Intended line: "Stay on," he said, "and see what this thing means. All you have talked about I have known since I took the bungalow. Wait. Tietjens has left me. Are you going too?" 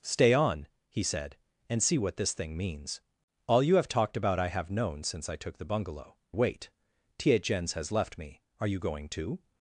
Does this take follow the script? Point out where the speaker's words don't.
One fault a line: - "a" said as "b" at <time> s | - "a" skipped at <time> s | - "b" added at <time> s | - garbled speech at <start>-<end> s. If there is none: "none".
none